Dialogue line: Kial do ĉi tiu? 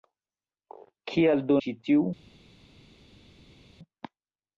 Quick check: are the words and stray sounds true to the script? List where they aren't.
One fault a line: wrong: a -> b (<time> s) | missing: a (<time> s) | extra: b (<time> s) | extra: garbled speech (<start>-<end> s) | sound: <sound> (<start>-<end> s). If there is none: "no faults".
no faults